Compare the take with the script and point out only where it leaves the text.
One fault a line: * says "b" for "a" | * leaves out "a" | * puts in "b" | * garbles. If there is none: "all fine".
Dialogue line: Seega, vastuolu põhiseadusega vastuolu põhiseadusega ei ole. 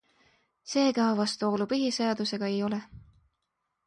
* leaves out "vastuolu põhiseadusega"